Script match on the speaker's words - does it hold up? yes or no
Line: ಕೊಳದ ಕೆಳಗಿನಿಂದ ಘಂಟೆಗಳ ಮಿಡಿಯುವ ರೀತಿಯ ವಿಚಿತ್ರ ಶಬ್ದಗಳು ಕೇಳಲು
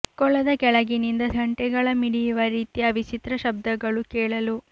yes